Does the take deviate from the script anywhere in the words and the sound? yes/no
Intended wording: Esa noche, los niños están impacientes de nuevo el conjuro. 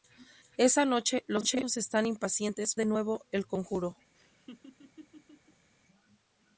yes